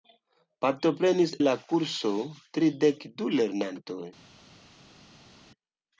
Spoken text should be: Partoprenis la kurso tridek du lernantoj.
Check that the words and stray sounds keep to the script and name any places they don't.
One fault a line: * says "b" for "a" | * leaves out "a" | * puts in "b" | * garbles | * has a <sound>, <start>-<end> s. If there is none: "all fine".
all fine